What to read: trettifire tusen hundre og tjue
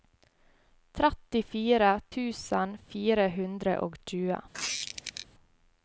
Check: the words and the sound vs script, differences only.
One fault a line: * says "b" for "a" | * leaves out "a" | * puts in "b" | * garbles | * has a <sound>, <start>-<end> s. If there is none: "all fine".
* puts in "fire"
* has a squeak, 4.5-5.3 s